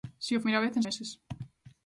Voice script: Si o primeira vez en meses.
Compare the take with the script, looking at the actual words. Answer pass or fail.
pass